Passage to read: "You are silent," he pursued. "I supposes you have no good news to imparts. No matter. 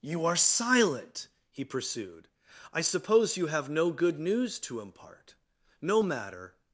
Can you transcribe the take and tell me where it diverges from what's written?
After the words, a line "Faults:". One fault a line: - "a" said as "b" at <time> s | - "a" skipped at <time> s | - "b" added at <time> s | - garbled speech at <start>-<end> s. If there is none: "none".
"You are silent," he pursued. "I suppose you have no good news to impart. No matter.
Faults:
- "supposes" said as "suppose" at 2.8 s
- "imparts" said as "impart" at 4.8 s